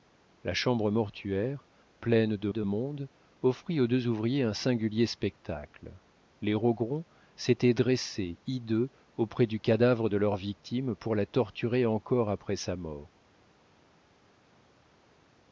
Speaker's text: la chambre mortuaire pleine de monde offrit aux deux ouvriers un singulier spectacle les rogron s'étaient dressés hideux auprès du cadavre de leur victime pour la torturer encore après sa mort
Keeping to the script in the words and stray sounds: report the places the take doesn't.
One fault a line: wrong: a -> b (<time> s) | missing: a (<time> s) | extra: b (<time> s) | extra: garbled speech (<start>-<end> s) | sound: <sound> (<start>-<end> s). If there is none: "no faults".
extra: de (2.5 s)